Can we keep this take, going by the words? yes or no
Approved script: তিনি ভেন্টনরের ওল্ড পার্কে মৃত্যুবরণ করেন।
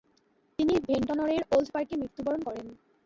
yes